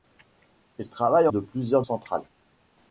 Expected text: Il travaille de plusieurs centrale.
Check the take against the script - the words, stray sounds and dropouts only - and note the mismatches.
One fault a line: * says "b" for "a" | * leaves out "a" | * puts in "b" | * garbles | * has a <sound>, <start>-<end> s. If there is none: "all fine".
all fine